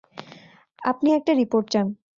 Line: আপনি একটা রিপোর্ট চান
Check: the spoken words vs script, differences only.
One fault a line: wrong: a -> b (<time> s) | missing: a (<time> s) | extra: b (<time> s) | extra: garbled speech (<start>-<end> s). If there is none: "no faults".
no faults